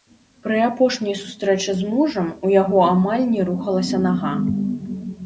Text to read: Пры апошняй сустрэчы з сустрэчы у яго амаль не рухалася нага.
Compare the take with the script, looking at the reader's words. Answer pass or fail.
fail